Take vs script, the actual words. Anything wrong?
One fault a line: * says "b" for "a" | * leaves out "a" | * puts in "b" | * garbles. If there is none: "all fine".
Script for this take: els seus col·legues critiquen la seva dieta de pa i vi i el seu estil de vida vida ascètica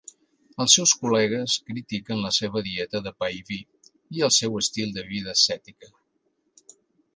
* leaves out "vida"